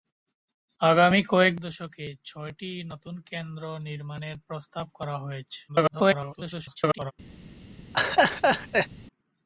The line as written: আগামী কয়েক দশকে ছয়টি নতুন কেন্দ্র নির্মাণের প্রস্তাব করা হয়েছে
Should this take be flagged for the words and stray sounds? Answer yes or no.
yes